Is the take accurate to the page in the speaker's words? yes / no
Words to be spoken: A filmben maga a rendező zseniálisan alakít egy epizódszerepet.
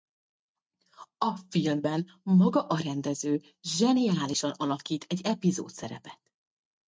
yes